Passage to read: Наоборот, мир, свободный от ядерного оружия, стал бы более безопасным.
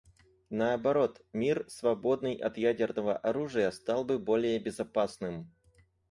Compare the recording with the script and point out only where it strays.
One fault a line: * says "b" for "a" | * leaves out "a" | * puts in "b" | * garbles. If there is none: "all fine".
all fine